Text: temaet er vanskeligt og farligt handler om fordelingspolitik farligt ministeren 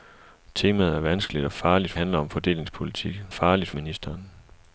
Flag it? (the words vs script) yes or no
no